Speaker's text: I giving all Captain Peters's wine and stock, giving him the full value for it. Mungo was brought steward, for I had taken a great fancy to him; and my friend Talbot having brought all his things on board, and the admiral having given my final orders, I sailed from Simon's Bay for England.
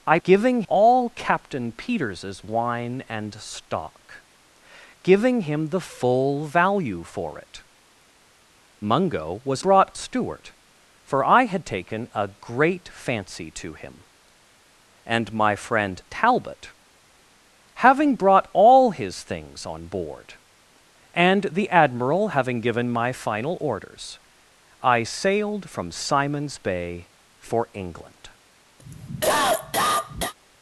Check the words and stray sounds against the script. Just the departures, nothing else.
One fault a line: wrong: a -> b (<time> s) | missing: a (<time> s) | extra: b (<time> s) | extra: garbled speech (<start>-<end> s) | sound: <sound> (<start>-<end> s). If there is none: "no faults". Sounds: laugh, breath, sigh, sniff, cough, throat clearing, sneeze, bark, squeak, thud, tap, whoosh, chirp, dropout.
sound: cough (28.8-30.3 s)